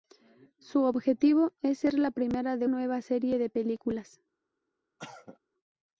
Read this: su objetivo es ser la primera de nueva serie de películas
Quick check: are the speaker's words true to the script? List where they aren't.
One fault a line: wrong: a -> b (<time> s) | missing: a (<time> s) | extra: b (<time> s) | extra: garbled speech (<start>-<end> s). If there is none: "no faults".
no faults